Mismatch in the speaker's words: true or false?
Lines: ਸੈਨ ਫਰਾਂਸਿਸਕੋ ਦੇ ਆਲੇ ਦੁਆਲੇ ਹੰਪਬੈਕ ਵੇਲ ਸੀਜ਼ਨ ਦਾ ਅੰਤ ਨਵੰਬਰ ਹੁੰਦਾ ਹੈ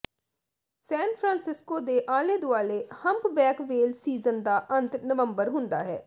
false